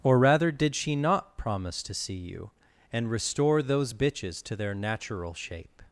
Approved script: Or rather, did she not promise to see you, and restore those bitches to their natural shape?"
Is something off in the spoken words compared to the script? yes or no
no